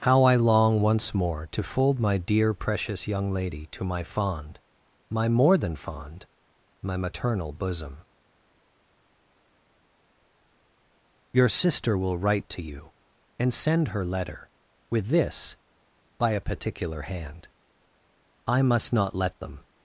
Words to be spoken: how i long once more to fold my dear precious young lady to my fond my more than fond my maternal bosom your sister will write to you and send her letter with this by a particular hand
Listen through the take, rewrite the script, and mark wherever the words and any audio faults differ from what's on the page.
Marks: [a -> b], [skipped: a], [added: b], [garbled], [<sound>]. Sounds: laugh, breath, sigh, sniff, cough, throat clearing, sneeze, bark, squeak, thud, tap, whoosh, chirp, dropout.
how i long once more to fold my dear precious young lady to my fond my more than fond my maternal bosom your sister will write to you and send her letter with this by a particular hand [added: i must not let them]